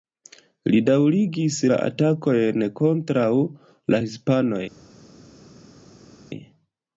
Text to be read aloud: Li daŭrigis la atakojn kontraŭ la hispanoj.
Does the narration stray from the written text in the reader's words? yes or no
no